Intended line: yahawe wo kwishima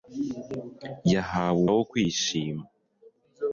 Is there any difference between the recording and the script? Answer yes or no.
no